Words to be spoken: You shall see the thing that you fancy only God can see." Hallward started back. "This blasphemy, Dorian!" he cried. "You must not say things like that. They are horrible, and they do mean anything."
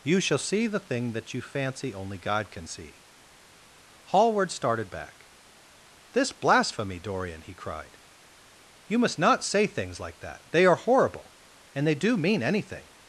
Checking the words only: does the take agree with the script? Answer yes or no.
yes